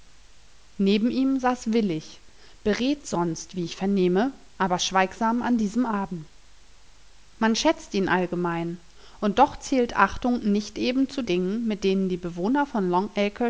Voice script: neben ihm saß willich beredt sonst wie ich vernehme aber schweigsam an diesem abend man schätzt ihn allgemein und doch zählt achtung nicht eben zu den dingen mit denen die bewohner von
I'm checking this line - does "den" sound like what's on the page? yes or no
no